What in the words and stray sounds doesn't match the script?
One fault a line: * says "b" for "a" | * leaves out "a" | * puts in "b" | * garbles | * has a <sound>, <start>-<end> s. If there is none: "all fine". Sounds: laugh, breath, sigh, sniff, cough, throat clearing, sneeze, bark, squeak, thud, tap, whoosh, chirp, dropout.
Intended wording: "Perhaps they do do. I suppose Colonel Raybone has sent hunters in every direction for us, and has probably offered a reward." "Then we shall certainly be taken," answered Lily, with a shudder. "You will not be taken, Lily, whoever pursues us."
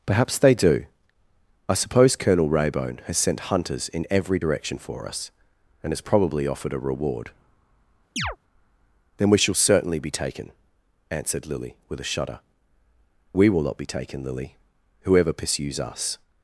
* leaves out "do"
* has a chirp, 8.2-8.4 s
* says "We" for "You"